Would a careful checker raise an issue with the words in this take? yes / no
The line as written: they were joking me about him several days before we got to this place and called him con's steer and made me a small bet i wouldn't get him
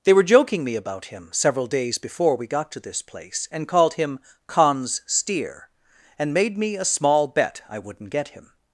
no